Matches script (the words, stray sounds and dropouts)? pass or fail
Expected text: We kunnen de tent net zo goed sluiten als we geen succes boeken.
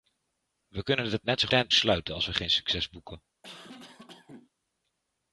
fail